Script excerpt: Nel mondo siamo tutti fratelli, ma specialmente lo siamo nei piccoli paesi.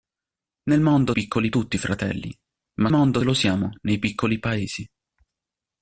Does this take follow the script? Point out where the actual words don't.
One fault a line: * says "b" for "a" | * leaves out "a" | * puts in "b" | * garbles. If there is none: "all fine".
* says "piccoli" for "siamo"
* says "mondo" for "specialmente"